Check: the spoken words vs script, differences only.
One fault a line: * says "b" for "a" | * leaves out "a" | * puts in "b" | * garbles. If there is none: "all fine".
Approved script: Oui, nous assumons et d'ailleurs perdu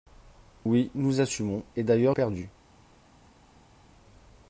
all fine